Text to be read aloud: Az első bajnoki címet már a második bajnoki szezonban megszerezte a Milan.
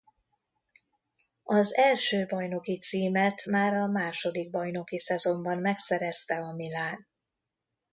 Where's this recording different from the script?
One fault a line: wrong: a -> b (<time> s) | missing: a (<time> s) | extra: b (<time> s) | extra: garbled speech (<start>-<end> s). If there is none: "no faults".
no faults